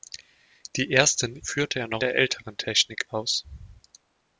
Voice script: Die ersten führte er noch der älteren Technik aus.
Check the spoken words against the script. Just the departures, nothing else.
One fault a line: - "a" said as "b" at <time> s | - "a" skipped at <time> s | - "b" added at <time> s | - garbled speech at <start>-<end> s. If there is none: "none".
none